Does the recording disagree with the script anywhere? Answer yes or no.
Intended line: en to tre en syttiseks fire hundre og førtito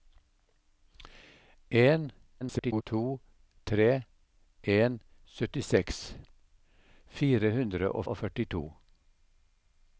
yes